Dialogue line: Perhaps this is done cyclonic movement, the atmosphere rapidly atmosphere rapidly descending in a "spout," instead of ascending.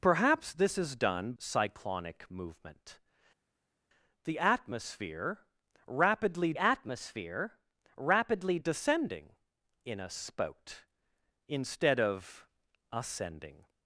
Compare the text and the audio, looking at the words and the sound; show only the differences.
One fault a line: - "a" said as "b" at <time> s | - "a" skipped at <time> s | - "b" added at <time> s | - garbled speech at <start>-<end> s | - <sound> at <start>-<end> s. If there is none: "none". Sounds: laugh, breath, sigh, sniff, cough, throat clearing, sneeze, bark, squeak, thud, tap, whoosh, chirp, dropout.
none